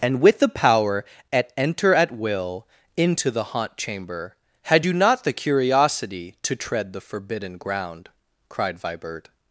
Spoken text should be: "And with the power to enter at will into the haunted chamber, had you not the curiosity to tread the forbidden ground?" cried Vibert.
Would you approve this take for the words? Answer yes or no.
no